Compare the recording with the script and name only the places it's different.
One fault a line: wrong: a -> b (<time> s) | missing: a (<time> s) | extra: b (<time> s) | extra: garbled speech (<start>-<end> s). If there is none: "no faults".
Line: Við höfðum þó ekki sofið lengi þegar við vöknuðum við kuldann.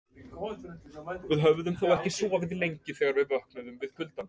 no faults